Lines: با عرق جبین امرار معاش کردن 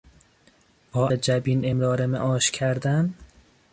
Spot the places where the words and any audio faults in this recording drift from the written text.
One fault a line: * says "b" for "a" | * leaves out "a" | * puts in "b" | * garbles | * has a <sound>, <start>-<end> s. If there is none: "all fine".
* leaves out "عرق"